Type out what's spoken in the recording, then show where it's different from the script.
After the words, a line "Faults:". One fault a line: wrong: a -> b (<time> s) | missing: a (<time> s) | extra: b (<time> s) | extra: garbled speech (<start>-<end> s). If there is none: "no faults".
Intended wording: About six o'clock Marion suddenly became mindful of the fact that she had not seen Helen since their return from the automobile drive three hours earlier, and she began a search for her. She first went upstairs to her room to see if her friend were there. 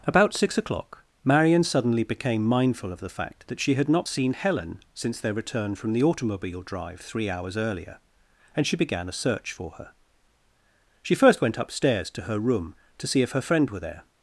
About six o'clock Marion suddenly became mindful of the fact that she had not seen Helen since their return from the automobile drive three hours earlier, and she began a search for her. She first went upstairs to her room to see if her friend were there.
Faults:
no faults